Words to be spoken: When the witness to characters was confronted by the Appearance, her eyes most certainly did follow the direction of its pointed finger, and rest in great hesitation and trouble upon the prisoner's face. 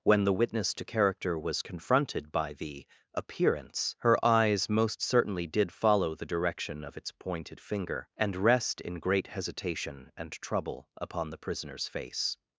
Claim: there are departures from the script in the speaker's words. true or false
true